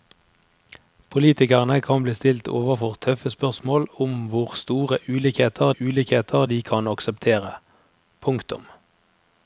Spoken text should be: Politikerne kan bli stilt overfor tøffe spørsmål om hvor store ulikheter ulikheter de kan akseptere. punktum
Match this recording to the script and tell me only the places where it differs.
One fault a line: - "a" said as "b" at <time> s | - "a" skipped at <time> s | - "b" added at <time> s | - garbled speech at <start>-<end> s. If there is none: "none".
none